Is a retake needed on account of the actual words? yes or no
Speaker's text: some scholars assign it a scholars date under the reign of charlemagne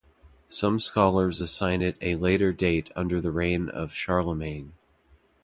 yes